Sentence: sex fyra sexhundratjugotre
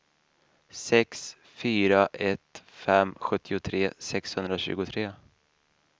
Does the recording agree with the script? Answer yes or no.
no